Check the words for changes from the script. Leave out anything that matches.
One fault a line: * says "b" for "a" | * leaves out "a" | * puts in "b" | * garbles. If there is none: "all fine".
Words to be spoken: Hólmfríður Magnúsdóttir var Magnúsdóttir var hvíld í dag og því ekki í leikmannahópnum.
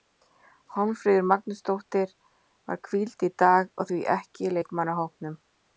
* leaves out "Magnúsdóttir var"